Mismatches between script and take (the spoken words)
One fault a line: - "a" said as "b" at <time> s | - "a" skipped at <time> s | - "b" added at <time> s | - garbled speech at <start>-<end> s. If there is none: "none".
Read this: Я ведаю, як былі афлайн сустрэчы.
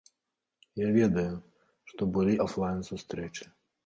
- "як" said as "што" at 1.9 s